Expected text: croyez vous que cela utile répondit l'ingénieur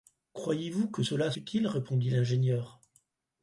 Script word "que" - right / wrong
right